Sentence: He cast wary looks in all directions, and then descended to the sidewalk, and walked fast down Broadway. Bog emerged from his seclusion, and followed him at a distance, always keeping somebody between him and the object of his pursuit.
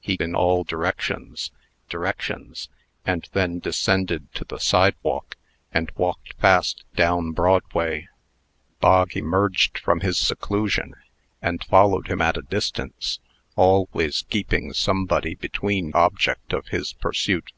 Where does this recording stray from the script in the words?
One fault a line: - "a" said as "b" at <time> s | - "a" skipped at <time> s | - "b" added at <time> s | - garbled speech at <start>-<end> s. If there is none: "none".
- "cast wary looks" skipped at 0.2 s
- "directions" added at 1.8 s
- "him and the" skipped at 15.9 s